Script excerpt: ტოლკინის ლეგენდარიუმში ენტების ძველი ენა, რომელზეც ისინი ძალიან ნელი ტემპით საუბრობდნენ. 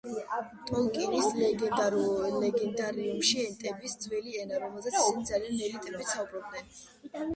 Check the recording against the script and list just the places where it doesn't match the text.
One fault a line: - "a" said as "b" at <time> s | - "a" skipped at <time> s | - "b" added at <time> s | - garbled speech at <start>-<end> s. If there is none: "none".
none